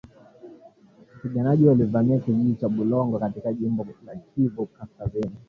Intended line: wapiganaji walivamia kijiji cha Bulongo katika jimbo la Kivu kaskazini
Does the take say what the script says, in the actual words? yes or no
yes